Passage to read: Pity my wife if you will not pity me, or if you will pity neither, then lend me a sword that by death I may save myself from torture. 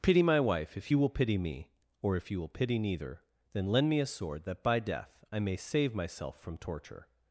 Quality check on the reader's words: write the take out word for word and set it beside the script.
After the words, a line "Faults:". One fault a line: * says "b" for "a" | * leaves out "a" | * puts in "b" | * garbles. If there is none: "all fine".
Pity my wife if you will pity me, or if you will pity neither, then lend me a sword that by death I may save myself from torture.
Faults:
* leaves out "not"